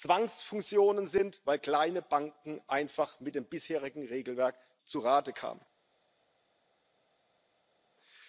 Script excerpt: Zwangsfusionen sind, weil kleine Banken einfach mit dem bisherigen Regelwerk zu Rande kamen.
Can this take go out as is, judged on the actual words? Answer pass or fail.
pass